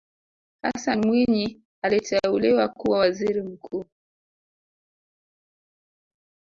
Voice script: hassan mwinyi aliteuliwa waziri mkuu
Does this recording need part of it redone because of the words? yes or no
yes